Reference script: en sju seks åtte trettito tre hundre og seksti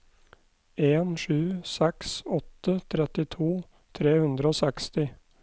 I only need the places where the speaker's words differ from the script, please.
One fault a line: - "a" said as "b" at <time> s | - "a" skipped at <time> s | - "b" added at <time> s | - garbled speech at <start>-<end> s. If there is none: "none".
none